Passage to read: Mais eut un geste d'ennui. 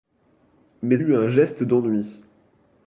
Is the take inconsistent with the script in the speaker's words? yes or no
no